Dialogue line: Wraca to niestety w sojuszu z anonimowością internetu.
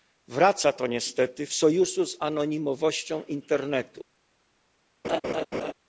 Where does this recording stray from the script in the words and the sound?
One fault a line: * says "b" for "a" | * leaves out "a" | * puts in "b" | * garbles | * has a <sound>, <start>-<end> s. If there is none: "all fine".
* has a laugh, 5.0-5.7 s